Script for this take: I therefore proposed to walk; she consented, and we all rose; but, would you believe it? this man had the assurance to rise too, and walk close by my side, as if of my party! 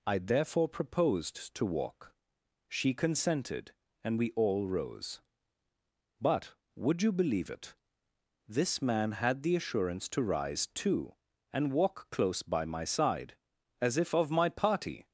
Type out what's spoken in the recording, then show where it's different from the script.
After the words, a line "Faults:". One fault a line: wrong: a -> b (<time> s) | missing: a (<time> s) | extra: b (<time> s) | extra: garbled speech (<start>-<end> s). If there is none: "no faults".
I therefore proposed to walk; she consented, and we all rose; but, would you believe it? this man had the assurance to rise too, and walk close by my side, as if of my party!
Faults:
no faults